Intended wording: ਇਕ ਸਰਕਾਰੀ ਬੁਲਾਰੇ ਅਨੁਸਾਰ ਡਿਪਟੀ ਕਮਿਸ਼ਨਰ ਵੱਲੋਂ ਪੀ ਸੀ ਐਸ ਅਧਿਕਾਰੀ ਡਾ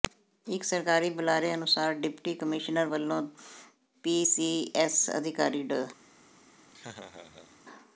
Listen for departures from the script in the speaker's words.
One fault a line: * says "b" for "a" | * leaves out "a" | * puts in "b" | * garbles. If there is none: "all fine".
all fine